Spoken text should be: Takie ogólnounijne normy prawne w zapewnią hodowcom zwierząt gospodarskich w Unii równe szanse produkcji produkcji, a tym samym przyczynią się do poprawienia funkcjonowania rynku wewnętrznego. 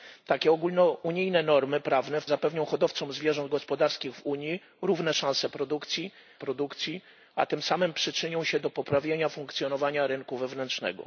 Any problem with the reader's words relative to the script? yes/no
no